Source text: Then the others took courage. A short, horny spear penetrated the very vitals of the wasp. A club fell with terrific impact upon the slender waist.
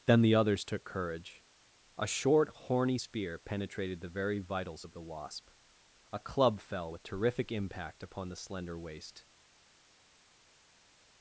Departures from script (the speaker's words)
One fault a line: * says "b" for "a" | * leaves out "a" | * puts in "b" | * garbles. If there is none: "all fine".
all fine